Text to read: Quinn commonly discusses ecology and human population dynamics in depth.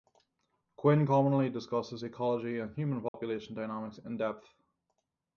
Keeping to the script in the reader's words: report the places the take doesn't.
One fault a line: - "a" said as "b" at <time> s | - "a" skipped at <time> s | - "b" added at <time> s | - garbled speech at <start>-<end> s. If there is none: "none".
none